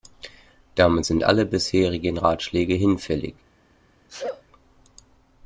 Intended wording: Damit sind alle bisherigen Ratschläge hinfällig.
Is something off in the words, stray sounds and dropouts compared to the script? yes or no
yes